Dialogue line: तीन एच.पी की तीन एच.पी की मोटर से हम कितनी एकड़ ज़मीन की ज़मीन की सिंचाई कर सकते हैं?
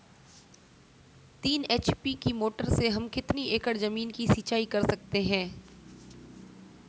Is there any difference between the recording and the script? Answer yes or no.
yes